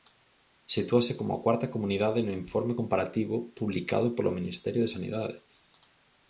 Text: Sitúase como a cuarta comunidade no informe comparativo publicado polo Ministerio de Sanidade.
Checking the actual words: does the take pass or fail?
pass